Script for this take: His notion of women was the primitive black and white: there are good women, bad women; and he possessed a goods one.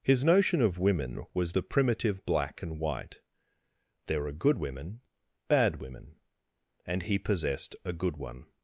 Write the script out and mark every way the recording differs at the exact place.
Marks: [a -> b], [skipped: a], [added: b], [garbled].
His notion of women was the primitive black and white: there are good women, bad women; and he possessed a [goods -> good] one.